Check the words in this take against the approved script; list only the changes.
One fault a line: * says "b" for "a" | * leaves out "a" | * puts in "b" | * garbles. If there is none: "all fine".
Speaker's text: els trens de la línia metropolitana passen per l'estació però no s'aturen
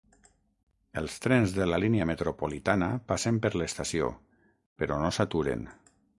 all fine